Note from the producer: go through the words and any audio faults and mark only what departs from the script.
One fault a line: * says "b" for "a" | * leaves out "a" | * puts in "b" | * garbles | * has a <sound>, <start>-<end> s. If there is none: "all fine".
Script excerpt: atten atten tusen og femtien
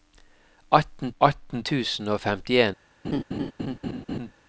* has a laugh, 3.0-4.3 s